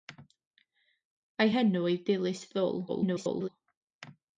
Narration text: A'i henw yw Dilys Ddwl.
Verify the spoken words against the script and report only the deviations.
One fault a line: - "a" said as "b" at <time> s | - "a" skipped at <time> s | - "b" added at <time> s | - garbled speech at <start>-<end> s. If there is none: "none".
- garbled speech at 2.9-3.5 s